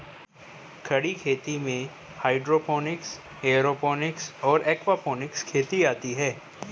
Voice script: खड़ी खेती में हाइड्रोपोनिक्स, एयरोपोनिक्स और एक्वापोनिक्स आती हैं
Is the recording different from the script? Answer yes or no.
yes